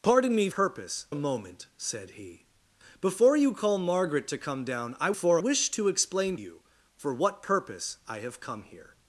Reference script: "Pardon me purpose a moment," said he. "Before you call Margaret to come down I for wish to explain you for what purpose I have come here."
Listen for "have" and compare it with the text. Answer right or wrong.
right